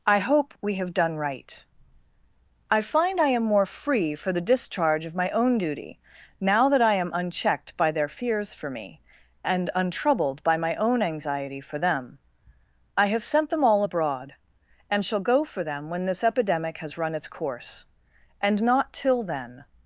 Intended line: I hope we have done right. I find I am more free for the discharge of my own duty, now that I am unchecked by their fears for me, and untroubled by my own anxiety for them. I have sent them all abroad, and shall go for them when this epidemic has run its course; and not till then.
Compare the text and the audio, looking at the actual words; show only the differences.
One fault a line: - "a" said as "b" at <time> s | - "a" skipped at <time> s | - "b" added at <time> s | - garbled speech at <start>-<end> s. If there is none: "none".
none